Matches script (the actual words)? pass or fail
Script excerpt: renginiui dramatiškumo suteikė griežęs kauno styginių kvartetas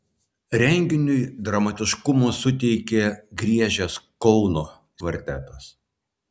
fail